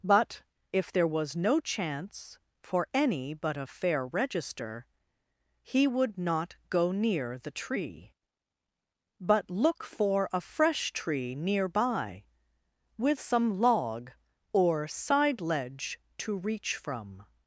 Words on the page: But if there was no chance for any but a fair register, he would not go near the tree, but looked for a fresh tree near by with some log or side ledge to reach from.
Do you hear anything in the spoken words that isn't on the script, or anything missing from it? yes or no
yes